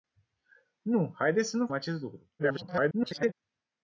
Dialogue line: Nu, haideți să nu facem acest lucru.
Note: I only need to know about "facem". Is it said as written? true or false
false